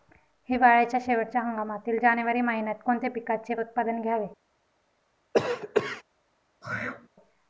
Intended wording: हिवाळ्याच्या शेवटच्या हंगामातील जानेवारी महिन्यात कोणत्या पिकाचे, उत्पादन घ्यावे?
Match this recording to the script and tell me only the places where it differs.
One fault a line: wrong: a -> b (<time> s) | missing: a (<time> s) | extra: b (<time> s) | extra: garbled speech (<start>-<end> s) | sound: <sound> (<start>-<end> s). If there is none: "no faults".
sound: cough (5.3-6.0 s)
sound: throat clearing (6.6-7.1 s)